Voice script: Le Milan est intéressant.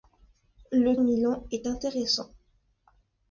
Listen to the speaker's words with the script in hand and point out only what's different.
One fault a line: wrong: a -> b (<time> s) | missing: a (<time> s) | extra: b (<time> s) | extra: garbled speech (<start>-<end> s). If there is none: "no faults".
no faults